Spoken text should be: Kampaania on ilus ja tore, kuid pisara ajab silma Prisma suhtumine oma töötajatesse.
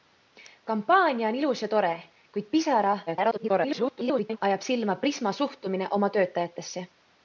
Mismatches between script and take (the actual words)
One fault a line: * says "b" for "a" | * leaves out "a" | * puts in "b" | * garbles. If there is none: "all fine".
* garbles